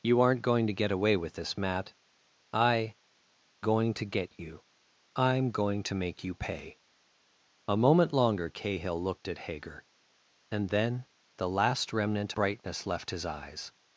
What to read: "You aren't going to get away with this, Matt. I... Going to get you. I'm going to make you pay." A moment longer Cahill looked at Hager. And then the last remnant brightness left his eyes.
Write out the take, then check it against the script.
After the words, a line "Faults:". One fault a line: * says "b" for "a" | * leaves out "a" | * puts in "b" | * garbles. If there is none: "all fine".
"You aren't going to get away with this, Matt. I... Going to get you. I'm going to make you pay." A moment longer Cahill looked at Hager. And then the last remnant brightness left his eyes.
Faults:
all fine